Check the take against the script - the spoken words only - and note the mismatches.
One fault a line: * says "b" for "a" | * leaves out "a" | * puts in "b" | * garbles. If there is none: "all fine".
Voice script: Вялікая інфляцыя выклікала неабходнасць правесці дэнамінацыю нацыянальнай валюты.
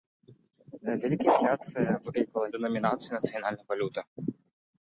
* leaves out "неабходнасць правесці"